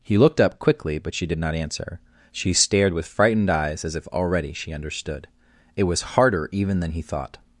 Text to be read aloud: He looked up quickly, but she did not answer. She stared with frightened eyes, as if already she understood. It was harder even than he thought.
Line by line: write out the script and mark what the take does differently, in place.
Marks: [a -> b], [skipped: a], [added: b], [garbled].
He looked up quickly, but she did not answer. She stared with frightened eyes, as if already she understood. It was harder even than he thought.